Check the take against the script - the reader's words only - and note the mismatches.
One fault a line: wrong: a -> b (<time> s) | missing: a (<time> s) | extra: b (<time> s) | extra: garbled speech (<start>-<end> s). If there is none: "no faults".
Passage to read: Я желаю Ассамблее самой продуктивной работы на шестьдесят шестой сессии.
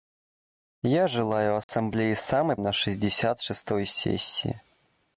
missing: продуктивной работы (2.5 s)